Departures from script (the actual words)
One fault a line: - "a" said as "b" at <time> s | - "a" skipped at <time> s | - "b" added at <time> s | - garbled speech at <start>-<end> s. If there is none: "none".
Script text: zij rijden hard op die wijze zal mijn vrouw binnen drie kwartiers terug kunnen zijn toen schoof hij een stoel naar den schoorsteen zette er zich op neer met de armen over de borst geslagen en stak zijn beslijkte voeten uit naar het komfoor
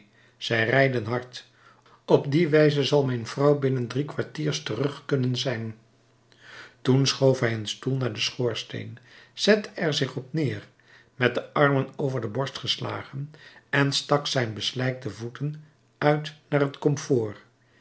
none